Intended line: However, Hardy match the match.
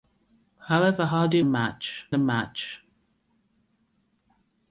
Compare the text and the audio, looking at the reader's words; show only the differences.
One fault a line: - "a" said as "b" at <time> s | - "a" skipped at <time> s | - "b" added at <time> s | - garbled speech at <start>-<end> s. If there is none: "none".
none